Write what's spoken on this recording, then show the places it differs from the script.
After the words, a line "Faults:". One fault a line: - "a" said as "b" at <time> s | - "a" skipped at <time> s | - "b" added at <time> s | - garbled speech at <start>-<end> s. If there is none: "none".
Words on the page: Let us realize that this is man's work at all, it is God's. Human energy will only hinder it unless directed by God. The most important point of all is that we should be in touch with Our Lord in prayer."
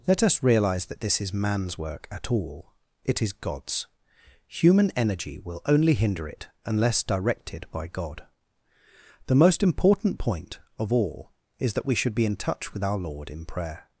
Let us realize that this is man's work at all, it is God's. Human energy will only hinder it unless directed by God. The most important point of all is that we should be in touch with Our Lord in prayer."
Faults:
none